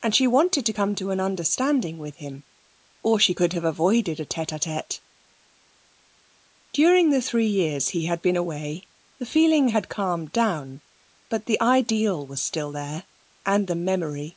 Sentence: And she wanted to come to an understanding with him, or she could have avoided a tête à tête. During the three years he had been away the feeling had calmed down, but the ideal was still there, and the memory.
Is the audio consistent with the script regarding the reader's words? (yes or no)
yes